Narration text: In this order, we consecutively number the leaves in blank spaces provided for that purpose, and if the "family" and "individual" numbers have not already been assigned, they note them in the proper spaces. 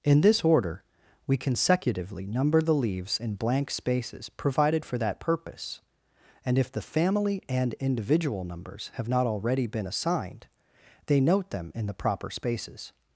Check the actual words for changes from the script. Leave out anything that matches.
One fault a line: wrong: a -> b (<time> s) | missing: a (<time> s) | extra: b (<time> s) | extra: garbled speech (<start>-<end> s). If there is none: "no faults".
no faults